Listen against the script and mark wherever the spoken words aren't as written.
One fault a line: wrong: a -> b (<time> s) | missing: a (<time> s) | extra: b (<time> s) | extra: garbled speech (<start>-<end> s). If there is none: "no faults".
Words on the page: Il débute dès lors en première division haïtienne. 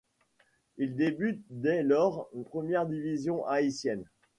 missing: en (2.3 s)